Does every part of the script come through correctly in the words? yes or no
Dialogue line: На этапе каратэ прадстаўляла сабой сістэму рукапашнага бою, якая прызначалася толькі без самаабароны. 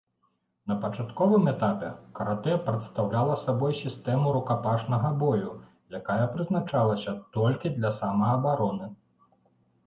no